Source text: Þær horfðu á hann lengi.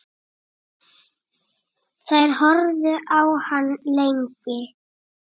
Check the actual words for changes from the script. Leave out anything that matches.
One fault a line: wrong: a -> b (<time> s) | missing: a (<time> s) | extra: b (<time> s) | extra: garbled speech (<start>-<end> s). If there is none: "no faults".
no faults